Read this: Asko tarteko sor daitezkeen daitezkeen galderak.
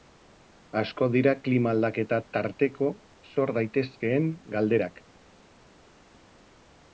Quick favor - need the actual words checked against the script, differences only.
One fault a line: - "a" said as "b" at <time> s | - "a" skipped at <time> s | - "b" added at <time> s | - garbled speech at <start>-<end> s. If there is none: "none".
- "dira klima aldaketa" added at 1.1 s
- "daitezkeen" skipped at 4.3 s